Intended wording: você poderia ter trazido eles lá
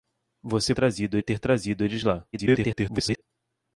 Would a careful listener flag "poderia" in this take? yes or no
yes